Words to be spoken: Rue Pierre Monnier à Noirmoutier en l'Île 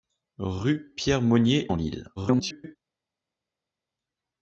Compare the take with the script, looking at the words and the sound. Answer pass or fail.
fail